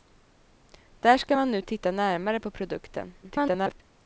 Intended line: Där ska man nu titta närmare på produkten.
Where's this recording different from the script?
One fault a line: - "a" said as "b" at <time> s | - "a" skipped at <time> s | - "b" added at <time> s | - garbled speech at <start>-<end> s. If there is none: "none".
- garbled speech at 3.2-3.8 s